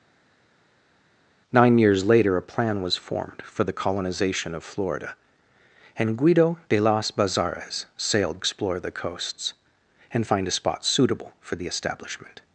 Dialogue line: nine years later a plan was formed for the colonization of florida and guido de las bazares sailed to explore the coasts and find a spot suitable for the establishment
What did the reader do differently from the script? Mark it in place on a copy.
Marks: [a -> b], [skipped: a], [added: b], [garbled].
nine years later a plan was formed for the colonization of florida and guido de las bazares sailed [skipped: to] explore the coasts and find a spot suitable for the establishment